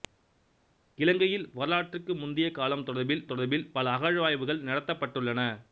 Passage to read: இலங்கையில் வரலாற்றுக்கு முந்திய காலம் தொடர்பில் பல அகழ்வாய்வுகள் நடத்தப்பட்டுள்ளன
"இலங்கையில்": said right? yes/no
yes